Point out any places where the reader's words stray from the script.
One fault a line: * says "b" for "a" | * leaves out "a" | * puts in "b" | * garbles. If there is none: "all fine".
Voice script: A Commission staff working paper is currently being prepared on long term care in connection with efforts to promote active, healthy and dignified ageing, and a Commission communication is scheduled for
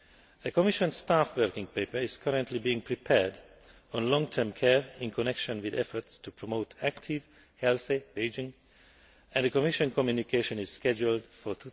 * leaves out "and dignified"